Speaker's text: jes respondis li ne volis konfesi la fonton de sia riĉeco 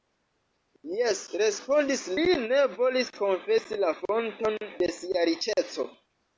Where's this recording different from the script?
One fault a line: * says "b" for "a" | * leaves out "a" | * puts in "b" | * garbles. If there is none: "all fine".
all fine